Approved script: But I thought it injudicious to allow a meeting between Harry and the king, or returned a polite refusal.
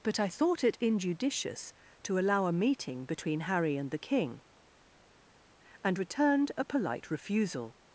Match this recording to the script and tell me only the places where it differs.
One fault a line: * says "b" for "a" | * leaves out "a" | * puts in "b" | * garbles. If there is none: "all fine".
* says "and" for "or"